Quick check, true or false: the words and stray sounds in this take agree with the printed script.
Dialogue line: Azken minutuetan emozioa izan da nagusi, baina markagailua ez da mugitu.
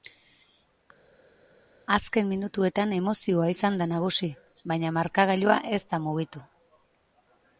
true